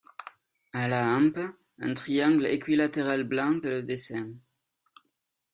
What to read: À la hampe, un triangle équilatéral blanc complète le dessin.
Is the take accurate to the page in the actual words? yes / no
no